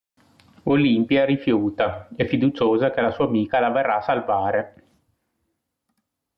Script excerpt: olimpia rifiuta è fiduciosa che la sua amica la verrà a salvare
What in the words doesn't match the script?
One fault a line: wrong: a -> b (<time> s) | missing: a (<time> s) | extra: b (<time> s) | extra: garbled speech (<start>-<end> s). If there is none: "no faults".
no faults